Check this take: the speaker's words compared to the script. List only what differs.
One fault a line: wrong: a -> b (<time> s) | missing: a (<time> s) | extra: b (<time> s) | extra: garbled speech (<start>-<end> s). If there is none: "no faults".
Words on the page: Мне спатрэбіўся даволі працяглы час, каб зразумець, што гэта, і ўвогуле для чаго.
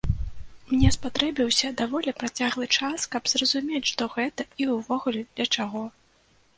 no faults